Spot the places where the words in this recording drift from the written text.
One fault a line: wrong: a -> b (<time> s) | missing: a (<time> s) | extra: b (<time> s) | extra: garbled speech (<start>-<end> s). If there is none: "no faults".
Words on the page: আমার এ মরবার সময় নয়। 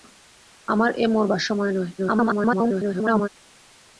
extra: garbled speech (2.0-3.3 s)